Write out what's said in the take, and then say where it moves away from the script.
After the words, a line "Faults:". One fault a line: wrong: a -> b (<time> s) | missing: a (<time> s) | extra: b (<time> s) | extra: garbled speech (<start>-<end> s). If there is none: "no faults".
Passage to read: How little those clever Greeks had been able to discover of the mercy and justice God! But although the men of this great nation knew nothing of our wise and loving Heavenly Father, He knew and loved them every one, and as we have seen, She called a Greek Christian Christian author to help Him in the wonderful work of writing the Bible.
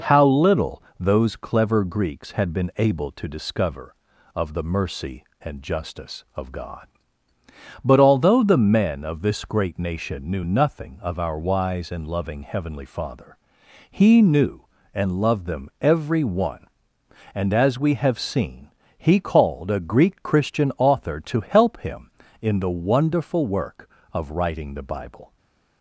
How little those clever Greeks had been able to discover of the mercy and justice of God! But although the men of this great nation knew nothing of our wise and loving Heavenly Father, He knew and loved them every one, and as we have seen, He called a Greek Christian author to help Him in the wonderful work of writing the Bible.
Faults:
extra: of (6.3 s)
wrong: She -> He (19.0 s)
missing: Christian (20.7 s)